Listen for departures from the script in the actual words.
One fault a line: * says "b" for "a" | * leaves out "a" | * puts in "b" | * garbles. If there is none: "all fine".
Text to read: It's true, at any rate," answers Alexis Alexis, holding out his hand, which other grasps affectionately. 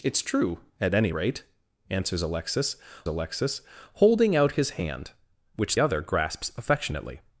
all fine